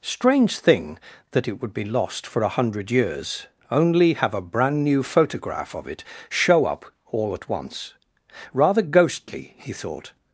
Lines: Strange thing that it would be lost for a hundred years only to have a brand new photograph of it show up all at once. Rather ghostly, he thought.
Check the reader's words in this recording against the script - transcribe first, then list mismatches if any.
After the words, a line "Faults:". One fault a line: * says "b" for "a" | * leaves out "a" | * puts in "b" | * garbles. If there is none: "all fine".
Strange thing that it would be lost for a hundred years only have a brand new photograph of it show up all at once. Rather ghostly, he thought.
Faults:
* leaves out "to"